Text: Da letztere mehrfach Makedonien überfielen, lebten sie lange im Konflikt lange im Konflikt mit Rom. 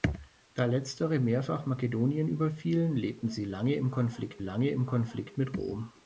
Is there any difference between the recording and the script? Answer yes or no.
no